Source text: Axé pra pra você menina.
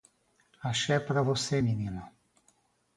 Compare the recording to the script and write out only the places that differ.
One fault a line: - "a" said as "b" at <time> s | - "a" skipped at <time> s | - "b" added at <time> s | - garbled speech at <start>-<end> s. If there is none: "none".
- "pra" skipped at 1.2 s